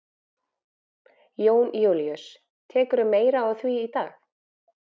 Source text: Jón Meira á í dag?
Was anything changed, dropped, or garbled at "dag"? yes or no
no